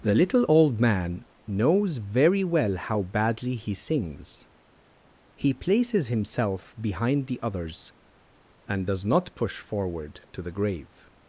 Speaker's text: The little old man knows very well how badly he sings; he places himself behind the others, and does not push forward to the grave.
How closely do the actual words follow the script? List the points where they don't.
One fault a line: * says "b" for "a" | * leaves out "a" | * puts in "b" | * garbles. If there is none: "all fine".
all fine